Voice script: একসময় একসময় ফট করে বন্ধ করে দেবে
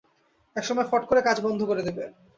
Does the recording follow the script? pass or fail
fail